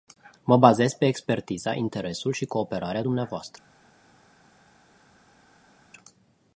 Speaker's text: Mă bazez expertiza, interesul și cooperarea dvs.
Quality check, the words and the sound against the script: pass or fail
fail